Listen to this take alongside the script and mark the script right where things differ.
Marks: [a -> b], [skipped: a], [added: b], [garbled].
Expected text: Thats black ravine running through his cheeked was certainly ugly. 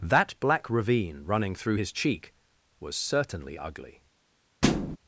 [Thats -> That] black ravine running through his [cheeked -> cheek] was certainly ugly.